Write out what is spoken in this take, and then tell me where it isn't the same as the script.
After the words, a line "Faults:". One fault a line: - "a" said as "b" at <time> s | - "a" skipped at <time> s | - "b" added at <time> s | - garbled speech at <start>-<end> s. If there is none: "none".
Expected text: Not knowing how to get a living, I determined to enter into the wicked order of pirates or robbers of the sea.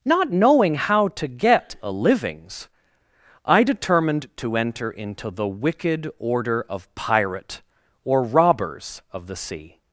Not knowing how to get a livings, I determined to enter into the wicked order of pirate or robbers of the sea.
Faults:
- "living" said as "livings" at 1.9 s
- "pirates" said as "pirate" at 6.9 s